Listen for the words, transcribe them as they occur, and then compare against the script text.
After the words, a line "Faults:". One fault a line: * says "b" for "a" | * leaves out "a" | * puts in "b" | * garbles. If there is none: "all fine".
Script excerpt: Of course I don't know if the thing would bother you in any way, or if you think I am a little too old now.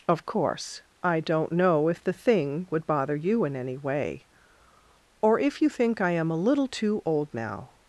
Of course I don't know if the thing would bother you in any way, or if you think I am a little too old now.
Faults:
all fine